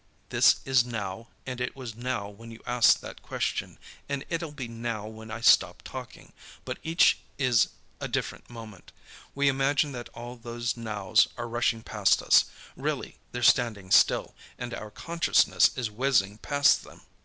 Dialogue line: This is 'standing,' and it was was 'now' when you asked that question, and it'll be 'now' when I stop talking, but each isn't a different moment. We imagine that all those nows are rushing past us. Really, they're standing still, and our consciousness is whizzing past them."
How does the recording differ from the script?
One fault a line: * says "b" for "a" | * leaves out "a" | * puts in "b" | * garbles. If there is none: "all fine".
* says "now" for "standing"
* leaves out "was"
* says "is" for "isn't"